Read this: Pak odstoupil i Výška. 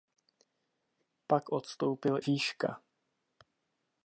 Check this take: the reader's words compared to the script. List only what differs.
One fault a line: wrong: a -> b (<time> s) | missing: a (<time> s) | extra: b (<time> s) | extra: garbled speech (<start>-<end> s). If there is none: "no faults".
missing: i (2.2 s)